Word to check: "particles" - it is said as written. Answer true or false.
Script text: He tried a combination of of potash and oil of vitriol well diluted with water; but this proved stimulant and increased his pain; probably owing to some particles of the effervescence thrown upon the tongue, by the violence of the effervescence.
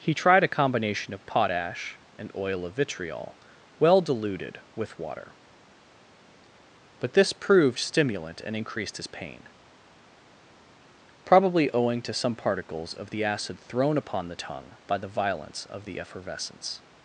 true